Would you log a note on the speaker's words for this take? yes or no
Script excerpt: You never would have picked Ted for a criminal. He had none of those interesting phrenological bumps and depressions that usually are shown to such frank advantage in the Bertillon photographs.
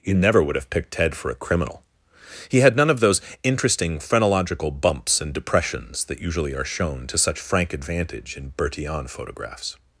yes